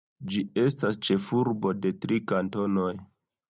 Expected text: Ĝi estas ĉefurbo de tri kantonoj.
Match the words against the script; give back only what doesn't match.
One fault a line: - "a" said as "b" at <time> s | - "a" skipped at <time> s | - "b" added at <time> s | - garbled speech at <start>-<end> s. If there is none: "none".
none